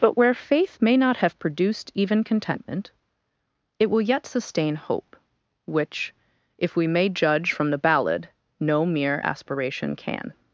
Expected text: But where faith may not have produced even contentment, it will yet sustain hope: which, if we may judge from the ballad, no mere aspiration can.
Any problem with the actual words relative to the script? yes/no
no